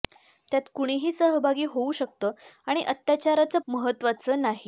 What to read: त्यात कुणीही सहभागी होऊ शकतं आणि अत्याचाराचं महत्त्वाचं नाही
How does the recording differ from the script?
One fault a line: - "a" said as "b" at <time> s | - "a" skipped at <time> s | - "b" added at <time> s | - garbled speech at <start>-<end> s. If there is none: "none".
none